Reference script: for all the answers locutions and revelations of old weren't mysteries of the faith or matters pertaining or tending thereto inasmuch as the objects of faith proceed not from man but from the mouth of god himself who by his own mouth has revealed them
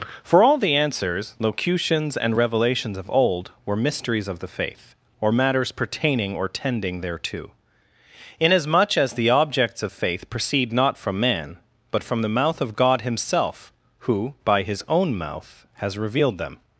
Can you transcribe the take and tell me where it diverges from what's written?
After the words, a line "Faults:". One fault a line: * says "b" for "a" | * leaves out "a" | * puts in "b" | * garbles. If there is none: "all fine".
for all the answers locutions and revelations of old were mysteries of the faith or matters pertaining or tending thereto inasmuch as the objects of faith proceed not from man but from the mouth of god himself who by his own mouth has revealed them
Faults:
* says "were" for "weren't"